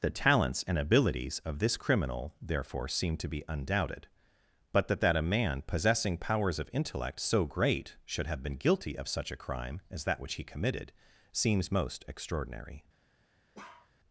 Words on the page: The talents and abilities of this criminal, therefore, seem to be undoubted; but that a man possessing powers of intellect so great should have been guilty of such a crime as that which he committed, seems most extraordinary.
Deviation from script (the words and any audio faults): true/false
true